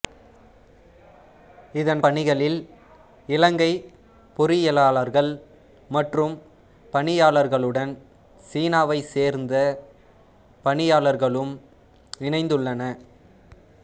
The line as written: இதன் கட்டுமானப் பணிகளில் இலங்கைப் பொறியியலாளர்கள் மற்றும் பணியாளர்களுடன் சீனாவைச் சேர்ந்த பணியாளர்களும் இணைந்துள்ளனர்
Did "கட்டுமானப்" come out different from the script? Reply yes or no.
yes